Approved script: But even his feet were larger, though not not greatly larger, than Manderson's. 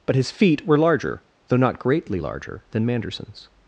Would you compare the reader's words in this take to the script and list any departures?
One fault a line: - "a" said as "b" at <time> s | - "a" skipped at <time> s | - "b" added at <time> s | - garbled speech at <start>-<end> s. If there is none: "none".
- "even" skipped at 0.1 s
- "not" skipped at 1.8 s